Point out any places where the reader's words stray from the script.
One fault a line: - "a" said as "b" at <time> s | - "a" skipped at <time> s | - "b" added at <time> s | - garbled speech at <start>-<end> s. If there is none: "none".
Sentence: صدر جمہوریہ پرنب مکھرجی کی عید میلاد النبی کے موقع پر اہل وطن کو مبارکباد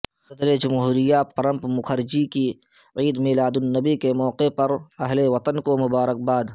none